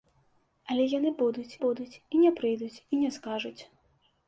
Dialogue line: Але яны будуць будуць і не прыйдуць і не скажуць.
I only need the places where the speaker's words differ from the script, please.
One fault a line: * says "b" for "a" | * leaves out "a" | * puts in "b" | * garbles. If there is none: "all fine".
all fine